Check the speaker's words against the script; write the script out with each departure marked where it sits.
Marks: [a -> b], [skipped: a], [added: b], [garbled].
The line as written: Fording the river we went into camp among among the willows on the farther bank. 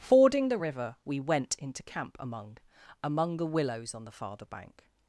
Fording the river we went into camp among among the willows on the farther bank.